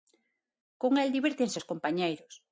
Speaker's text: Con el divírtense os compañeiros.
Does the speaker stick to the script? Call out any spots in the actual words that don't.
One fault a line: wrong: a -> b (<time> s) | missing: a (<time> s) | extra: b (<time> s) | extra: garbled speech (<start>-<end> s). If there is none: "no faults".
no faults